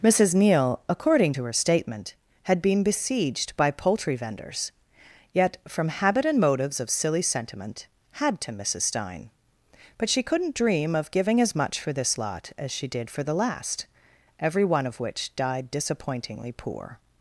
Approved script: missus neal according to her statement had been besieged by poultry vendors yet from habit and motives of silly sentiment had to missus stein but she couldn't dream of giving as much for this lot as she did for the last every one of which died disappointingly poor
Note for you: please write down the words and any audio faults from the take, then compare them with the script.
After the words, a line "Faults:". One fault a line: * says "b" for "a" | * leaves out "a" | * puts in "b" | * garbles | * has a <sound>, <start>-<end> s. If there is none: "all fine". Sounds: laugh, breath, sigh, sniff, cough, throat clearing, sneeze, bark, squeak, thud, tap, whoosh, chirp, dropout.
missus neal according to her statement had been besieged by poultry vendors yet from habit and motives of silly sentiment had to missus stein but she couldn't dream of giving as much for this lot as she did for the last every one of which died disappointingly poor
Faults:
all fine